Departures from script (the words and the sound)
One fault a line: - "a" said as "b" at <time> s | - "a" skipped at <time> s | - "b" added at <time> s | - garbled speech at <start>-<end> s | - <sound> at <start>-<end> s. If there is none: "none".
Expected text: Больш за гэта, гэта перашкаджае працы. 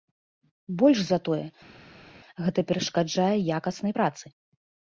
- "гэта" said as "тое" at 1.3 s
- "якаснай" added at 3.6 s